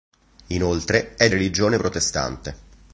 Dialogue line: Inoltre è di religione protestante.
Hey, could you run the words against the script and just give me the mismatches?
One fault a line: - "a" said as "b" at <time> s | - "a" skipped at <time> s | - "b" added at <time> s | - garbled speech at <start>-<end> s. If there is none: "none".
- "di" skipped at 1.3 s